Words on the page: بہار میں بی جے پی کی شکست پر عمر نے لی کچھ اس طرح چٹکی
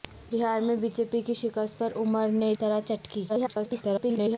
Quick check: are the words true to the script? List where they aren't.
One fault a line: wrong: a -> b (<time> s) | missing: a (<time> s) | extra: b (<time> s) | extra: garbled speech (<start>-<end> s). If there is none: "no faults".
missing: لی کچھ اس (2.5 s)
extra: garbled speech (3.3-4.4 s)